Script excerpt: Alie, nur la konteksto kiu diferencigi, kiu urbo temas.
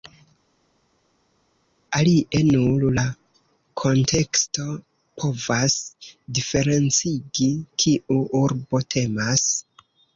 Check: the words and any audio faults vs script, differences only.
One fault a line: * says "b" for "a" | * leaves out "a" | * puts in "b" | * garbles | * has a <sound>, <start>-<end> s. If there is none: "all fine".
* says "povas" for "kiu"